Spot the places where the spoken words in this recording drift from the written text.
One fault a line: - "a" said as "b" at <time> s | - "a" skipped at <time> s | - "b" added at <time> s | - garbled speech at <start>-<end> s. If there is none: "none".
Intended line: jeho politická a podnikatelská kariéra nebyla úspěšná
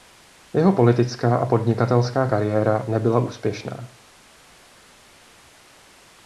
none